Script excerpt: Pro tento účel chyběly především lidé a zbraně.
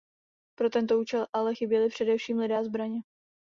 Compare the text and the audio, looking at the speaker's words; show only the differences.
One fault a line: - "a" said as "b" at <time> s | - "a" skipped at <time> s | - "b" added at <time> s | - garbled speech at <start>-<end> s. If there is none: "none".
- "ale" added at 1.3 s